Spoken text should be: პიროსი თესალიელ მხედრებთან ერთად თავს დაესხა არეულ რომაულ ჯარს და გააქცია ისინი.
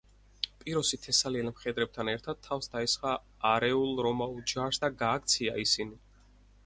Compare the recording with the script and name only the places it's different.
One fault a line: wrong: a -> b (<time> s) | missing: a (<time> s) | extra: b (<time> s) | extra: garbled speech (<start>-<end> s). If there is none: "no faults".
no faults